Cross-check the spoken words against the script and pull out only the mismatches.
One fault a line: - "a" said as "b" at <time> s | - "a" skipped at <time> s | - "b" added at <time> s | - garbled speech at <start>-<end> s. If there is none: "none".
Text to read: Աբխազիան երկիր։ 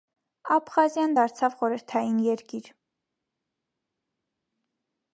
- "դարձավ խորհրդային" added at 1.2 s